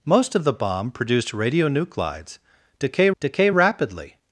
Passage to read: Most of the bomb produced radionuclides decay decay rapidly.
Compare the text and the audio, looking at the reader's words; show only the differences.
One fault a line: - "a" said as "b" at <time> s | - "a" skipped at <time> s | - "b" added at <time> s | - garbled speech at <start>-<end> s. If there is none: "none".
none